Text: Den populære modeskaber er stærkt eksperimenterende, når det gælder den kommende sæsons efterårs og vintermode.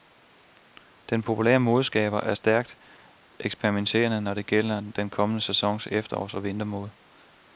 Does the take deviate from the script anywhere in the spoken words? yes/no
no